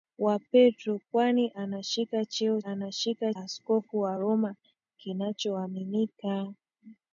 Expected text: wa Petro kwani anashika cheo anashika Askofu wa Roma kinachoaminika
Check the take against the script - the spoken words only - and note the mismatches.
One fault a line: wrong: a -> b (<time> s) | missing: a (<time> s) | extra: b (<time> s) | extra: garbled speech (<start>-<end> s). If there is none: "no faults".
no faults